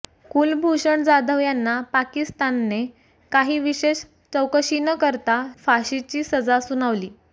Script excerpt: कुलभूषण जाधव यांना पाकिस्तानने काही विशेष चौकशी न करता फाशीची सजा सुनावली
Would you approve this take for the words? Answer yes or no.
yes